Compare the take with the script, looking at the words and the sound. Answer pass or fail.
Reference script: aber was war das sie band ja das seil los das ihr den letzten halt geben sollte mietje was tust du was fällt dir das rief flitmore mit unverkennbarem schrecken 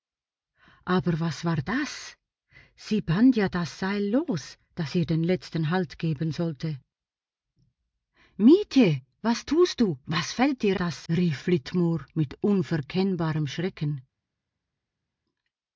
pass